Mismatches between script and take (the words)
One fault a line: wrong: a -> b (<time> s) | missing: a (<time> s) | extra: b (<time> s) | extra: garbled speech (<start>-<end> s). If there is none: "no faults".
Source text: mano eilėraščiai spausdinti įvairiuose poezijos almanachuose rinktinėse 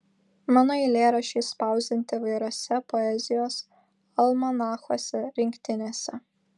no faults